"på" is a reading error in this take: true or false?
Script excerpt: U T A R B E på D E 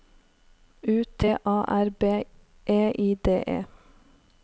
true